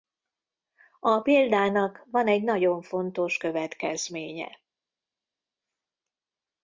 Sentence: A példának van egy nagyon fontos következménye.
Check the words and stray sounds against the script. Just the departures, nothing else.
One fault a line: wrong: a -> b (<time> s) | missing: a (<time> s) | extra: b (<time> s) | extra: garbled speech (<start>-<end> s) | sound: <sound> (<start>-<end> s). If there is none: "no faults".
no faults